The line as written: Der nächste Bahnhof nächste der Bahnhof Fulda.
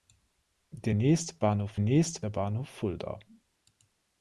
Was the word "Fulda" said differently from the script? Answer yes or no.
no